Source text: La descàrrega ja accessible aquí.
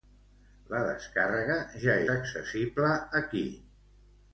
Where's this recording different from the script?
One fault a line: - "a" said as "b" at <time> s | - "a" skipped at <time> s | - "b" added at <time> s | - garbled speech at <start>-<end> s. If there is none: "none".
none